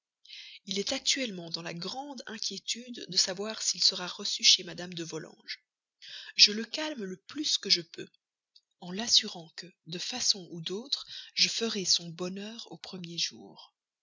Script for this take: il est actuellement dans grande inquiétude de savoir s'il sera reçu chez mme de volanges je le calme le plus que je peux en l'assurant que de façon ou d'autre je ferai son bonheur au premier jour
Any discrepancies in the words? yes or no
yes